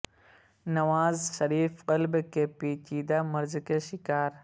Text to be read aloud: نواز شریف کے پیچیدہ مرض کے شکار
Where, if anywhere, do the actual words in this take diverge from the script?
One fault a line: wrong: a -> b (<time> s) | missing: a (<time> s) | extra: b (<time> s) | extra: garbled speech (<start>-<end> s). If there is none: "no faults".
extra: قلب (1.8 s)